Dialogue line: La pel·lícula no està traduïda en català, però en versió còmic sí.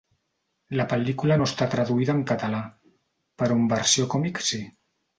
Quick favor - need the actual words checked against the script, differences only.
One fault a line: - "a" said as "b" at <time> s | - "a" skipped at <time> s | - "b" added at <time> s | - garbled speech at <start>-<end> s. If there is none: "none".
none